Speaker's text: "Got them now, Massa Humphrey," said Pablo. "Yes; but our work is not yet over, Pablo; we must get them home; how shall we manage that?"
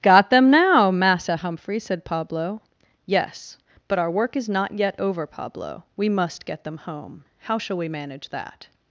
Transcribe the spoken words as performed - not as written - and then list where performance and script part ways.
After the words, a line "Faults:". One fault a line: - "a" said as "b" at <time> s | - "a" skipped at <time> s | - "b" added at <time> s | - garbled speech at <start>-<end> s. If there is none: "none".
"Got them now, Massa Humphrey," said Pablo. "Yes; but our work is not yet over, Pablo; we must get them home; how shall we manage that?"
Faults:
none